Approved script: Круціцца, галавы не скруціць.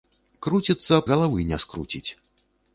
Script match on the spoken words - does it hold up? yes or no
yes